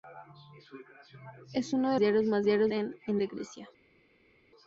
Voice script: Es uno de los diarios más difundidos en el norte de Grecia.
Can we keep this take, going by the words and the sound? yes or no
no